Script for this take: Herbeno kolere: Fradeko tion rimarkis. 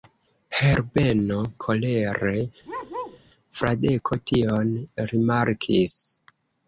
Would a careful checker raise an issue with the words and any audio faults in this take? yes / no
yes